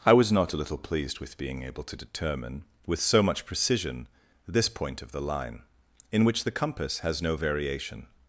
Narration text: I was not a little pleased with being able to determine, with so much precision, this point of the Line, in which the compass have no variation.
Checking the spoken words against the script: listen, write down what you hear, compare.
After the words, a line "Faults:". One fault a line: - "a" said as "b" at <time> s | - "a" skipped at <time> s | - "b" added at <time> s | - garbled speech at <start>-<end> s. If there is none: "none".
I was not a little pleased with being able to determine, with so much precision, this point of the Line, in which the compass has no variation.
Faults:
- "have" said as "has" at 7.0 s